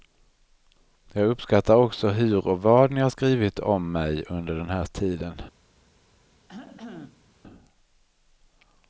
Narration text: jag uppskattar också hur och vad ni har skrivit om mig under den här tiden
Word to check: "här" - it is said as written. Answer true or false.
true